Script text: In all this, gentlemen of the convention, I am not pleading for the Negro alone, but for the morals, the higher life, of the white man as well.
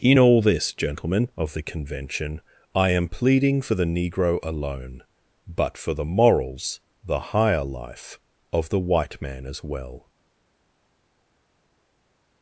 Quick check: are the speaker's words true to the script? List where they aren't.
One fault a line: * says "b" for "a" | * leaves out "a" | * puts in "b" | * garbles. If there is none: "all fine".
* leaves out "not"